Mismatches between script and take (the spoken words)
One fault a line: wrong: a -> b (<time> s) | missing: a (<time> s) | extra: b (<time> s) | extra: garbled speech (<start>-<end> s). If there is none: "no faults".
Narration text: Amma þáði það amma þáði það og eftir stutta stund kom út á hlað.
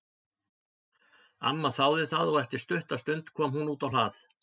missing: amma þáði það (2.3 s)
extra: hún (3.6 s)